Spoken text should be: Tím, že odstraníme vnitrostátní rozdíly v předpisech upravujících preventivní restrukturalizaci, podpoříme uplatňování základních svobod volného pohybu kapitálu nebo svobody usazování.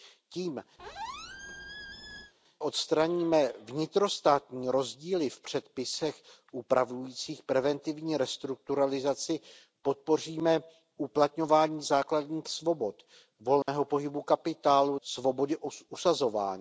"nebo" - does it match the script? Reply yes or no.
no